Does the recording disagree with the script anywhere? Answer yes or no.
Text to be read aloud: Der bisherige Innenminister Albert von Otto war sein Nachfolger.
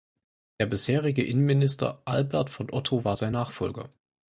no